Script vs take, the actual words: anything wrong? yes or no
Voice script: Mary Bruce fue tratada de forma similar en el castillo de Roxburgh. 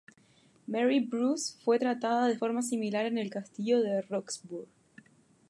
no